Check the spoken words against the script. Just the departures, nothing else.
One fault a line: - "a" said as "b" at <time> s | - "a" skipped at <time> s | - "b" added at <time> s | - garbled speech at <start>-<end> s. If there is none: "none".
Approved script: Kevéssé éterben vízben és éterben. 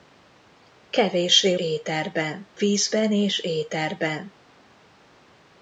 none